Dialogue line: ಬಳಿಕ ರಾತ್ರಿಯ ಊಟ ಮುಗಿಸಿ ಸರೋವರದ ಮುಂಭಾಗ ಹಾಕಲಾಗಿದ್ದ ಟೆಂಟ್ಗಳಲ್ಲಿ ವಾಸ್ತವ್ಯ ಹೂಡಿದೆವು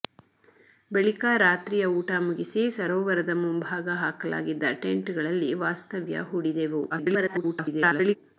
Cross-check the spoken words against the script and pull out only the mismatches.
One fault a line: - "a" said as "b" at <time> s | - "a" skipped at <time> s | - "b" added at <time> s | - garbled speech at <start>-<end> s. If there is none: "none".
- garbled speech at 6.9-8.2 s